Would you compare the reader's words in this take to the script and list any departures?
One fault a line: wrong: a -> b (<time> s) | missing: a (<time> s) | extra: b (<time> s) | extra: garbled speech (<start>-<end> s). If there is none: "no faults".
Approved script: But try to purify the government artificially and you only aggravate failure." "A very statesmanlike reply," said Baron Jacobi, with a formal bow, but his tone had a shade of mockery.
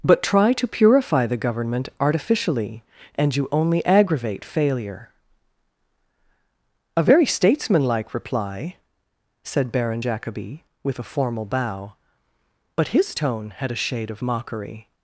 no faults